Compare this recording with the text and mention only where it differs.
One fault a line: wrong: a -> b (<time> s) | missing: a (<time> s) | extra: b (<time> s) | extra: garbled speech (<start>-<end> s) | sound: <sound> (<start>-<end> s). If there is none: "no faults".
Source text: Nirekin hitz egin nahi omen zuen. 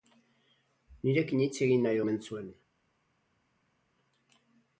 no faults